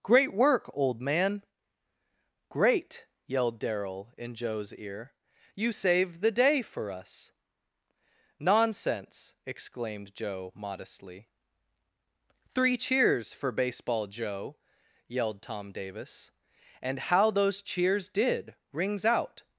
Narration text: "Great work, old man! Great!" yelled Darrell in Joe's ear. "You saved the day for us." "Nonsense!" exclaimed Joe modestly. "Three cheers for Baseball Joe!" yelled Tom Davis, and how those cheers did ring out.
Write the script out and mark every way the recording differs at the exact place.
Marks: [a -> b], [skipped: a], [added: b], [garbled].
"Great work, old man! Great!" yelled Darrell in Joe's ear. "You saved the day for us." "Nonsense!" exclaimed Joe modestly. "Three cheers for Baseball Joe!" yelled Tom Davis, and how those cheers did [ring -> rings] out.